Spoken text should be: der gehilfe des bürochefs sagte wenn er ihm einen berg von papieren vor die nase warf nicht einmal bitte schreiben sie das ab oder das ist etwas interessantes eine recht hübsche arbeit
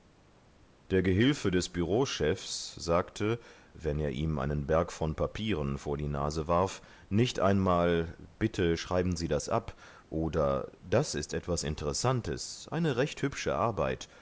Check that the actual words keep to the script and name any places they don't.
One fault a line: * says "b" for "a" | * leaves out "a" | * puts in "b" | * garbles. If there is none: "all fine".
all fine